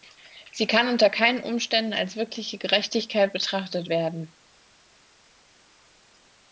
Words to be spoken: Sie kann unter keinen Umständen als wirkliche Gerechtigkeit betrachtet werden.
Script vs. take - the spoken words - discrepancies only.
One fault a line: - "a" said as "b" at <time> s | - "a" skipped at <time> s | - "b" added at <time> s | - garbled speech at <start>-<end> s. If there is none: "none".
none